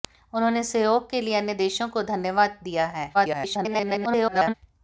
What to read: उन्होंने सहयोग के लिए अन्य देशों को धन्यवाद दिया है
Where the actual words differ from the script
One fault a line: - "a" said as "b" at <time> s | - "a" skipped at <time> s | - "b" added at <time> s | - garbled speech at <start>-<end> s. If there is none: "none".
- garbled speech at 3.1-4.5 s